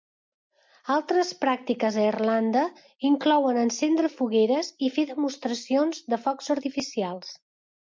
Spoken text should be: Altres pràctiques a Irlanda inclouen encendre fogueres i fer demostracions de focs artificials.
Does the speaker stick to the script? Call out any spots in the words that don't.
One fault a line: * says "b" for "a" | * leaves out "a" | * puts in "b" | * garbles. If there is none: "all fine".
all fine